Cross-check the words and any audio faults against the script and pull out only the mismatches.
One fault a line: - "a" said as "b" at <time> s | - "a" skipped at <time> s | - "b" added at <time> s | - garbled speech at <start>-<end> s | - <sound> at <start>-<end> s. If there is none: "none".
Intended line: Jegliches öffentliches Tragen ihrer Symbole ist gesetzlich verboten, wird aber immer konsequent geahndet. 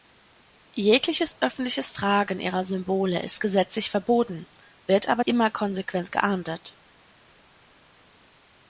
none